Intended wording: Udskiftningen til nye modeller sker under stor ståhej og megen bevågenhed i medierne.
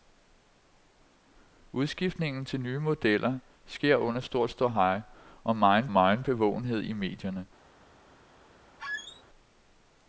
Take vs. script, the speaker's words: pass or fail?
fail